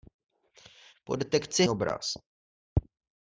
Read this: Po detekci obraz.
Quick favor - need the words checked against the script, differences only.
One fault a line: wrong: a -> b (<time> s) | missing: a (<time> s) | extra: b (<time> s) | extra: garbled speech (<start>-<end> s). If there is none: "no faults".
no faults